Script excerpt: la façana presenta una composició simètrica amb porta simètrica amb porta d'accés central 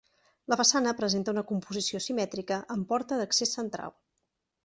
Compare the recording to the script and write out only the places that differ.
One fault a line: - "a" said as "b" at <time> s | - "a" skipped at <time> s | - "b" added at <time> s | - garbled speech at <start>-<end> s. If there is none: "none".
- "simètrica amb porta" skipped at 3.2 s